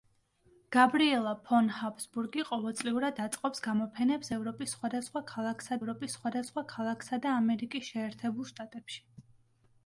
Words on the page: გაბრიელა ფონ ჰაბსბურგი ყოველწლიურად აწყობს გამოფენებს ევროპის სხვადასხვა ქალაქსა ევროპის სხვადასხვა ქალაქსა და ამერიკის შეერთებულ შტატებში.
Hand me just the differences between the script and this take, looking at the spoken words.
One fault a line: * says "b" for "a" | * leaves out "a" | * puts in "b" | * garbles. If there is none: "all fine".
all fine